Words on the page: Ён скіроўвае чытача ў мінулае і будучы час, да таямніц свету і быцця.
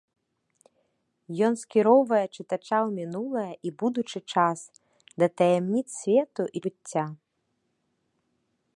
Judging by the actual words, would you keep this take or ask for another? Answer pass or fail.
pass